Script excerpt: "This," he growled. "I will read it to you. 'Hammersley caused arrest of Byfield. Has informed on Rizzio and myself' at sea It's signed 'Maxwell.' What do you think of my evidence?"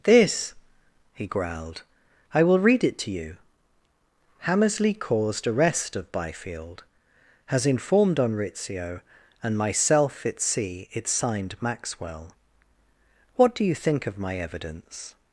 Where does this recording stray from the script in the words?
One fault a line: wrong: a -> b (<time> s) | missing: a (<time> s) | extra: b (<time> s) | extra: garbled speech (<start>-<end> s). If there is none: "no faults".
no faults